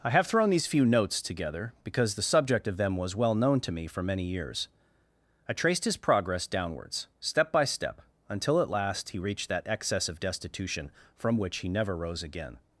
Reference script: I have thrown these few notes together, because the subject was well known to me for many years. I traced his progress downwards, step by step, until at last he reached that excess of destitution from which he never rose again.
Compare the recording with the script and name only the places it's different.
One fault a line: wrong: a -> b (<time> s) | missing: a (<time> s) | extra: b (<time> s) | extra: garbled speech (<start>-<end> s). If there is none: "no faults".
extra: of them (2.7 s)